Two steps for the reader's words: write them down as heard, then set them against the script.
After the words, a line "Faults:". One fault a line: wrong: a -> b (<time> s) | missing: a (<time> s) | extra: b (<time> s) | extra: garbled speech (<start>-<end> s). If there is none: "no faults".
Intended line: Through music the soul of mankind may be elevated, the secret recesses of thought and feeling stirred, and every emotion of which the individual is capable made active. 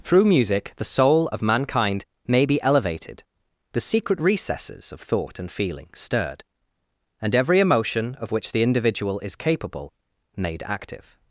Through music the soul of mankind may be elevated, the secret recesses of thought and feeling stirred, and every emotion of which the individual is capable made active.
Faults:
no faults